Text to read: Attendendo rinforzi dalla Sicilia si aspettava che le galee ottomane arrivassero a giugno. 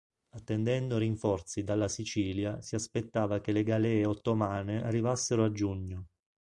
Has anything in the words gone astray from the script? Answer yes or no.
no